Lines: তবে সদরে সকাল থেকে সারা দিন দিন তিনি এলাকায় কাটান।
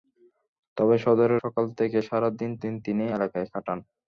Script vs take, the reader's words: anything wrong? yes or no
no